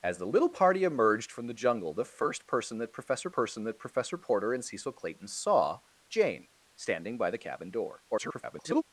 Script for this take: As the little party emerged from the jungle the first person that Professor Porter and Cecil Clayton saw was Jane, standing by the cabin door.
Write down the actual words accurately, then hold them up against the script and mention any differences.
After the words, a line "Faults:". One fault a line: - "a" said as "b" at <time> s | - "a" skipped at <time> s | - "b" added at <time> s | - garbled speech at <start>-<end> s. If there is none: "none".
As the little party emerged from the jungle the first person that Professor person that Professor Porter and Cecil Clayton saw Jane, standing by the cabin door. [garbled]
Faults:
- "person that Professor" added at 3.3 s
- "was" skipped at 5.8 s
- garbled speech at 8.1-8.8 s